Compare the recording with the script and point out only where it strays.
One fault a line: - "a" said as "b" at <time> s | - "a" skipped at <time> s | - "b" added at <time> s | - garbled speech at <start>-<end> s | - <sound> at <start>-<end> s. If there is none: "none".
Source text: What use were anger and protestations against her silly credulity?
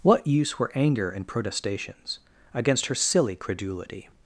none